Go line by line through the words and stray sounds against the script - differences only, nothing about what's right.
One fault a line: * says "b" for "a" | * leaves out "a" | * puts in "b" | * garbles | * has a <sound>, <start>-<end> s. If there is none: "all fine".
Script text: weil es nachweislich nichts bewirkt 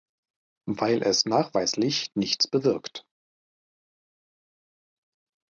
all fine